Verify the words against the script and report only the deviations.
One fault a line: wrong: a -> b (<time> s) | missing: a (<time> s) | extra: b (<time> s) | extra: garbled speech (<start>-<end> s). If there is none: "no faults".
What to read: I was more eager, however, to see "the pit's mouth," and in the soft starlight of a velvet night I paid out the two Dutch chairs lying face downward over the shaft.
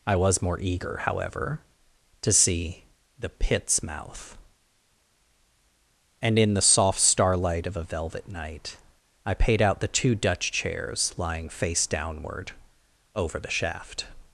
no faults